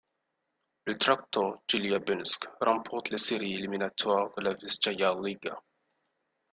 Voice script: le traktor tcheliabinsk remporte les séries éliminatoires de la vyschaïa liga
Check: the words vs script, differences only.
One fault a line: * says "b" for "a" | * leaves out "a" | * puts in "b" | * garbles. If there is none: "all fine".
all fine